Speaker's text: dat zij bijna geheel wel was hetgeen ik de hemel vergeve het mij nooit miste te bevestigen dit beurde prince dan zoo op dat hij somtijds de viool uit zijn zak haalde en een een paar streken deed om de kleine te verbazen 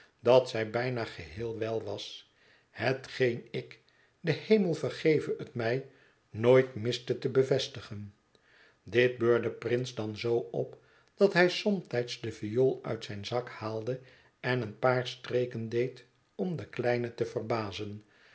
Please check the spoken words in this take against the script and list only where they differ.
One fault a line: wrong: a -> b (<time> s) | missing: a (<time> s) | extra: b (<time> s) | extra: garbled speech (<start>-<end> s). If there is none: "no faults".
missing: een (14.8 s)